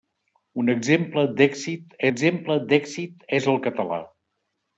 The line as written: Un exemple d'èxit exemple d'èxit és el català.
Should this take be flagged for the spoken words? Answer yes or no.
no